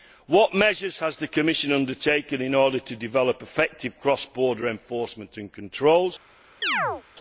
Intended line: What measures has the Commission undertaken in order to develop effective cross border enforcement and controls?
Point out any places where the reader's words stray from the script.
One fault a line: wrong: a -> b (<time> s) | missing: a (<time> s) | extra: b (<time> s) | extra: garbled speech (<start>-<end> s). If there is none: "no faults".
no faults